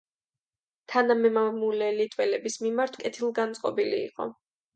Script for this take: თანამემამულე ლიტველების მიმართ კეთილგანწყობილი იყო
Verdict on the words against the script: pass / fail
pass